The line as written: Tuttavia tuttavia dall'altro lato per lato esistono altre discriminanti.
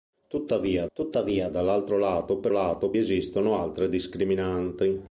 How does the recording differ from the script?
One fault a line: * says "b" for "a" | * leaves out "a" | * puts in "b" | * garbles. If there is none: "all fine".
all fine